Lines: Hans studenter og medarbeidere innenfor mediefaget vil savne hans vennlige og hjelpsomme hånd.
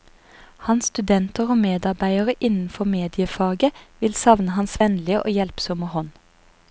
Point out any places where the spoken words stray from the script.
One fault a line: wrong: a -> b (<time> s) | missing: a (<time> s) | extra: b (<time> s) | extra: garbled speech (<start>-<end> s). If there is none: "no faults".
no faults